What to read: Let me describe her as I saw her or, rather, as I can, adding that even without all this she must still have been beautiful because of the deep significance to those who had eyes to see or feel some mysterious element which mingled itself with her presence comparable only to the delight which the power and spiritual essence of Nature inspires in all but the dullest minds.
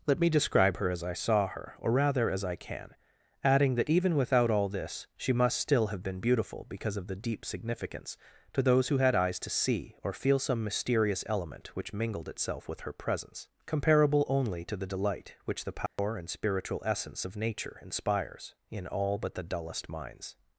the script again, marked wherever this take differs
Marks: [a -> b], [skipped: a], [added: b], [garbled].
Let me describe her as I saw her or, rather, as I can, adding that even without all this she must still have been beautiful because of the deep significance to those who had eyes to see or feel some mysterious element which mingled itself with her presence comparable only to the delight which the power and spiritual essence of Nature inspires in all but the dullest minds.